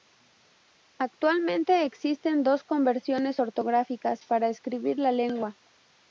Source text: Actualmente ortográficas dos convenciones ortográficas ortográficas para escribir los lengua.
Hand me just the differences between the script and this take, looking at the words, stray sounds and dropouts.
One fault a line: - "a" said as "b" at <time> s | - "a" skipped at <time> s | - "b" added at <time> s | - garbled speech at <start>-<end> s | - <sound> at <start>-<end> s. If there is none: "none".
- "ortográficas" said as "existen" at 1.9 s
- "ortográficas" skipped at 4.2 s
- "los" said as "la" at 5.0 s